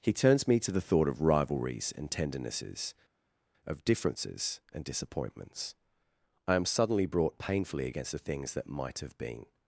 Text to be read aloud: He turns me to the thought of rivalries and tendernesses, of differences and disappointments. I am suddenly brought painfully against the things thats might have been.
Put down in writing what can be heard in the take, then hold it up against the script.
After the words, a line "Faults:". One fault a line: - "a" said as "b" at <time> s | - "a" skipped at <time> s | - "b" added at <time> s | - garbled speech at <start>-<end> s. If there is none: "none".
He turns me to the thought of rivalries and tendernesses, of differences and disappointments. I am suddenly brought painfully against the things that might have been.
Faults:
- "thats" said as "that" at 8.5 s